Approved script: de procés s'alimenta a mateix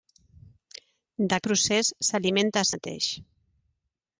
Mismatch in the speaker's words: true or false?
false